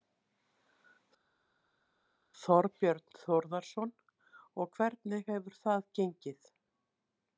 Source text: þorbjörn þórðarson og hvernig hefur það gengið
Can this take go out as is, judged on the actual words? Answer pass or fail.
pass